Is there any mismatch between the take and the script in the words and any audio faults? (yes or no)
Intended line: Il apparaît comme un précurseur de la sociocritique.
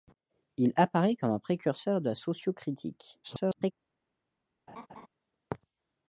yes